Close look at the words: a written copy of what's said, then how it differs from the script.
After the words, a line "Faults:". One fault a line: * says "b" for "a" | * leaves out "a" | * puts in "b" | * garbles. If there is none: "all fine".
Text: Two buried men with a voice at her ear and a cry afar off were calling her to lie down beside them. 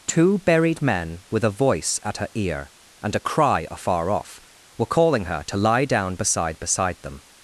Two buried men with a voice at her ear and a cry afar off were calling her to lie down beside beside them.
Faults:
* puts in "beside"